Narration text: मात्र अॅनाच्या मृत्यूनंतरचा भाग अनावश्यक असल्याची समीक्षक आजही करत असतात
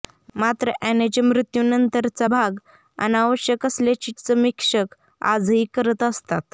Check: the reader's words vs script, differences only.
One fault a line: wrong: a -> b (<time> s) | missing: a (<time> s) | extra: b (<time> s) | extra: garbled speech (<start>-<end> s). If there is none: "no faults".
no faults